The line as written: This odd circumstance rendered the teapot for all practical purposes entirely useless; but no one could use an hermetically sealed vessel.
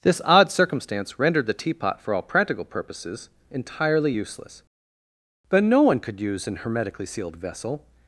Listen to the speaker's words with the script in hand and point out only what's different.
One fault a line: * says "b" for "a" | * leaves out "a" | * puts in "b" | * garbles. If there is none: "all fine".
all fine